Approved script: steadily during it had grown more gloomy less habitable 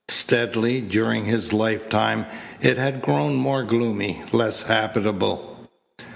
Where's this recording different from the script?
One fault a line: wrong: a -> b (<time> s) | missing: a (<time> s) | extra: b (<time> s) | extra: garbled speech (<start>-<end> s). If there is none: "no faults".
extra: his lifetime (1.2 s)